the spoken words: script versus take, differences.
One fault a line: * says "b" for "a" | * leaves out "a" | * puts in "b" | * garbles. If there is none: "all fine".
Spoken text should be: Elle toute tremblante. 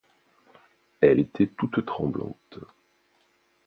* puts in "était"